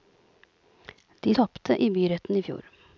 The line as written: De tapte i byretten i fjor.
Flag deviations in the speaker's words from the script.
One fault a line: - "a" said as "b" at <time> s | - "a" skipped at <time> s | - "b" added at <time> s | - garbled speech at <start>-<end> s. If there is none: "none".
none